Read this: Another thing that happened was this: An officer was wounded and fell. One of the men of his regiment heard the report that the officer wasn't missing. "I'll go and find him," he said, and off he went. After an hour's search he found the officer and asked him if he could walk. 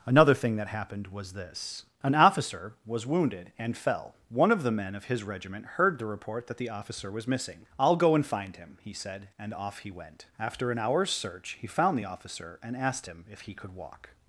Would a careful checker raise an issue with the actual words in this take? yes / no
yes